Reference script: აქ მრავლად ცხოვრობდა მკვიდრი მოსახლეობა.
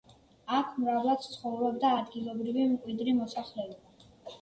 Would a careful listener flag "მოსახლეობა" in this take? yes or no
no